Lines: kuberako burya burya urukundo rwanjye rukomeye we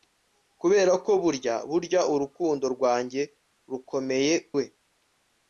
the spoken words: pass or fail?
pass